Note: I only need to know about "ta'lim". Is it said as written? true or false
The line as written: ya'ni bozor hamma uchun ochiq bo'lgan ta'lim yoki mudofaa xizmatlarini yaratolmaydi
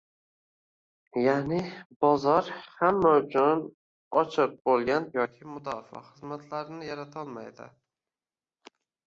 false